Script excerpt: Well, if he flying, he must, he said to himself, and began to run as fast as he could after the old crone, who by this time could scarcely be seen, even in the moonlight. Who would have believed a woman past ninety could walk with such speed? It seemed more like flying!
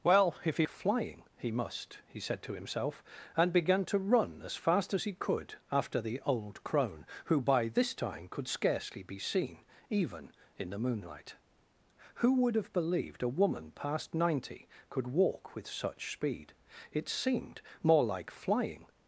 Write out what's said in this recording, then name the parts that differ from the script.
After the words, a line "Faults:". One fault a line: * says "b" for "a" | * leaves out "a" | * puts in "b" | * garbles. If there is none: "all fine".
Well, if he flying, he must, he said to himself, and began to run as fast as he could after the old crone, who by this time could scarcely be seen, even in the moonlight. Who would have believed a woman past ninety could walk with such speed? It seemed more like flying!
Faults:
all fine